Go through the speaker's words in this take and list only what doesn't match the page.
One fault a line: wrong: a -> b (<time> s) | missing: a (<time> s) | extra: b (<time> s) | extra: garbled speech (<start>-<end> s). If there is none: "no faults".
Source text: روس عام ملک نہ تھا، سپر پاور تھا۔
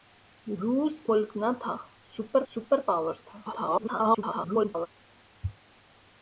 missing: عام (1.1 s)
extra: سپر (2.5 s)
extra: garbled speech (3.5-4.9 s)